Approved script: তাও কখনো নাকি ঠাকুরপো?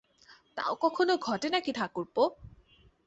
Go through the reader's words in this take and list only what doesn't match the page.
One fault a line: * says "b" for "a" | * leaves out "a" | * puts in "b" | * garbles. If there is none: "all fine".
* puts in "ঘটে"